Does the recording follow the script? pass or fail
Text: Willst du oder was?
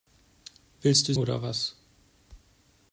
pass